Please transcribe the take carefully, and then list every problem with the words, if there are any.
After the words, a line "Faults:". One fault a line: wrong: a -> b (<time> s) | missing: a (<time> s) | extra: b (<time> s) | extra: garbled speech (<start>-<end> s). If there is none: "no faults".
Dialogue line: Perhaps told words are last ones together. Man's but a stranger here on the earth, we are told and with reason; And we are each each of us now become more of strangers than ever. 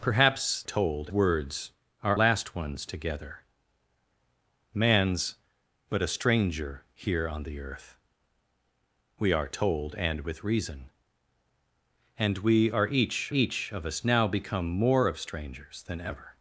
Perhaps told words are last ones together. Man's but a stranger here on the earth, we are told and with reason; And we are each each of us now become more of strangers than ever.
Faults:
no faults